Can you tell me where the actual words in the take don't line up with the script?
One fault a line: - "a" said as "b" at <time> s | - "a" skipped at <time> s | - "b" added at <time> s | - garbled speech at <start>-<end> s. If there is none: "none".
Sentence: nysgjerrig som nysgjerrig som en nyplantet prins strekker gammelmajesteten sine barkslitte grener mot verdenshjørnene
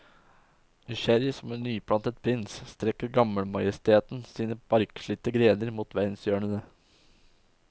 - "nysgjerrig som" skipped at 1.5 s